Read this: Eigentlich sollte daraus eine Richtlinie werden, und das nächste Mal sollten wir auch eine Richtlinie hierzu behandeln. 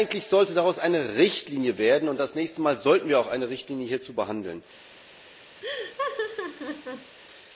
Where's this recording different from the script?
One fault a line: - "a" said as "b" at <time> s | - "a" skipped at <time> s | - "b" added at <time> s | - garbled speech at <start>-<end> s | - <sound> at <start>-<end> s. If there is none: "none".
- laugh at 5.6-7.2 s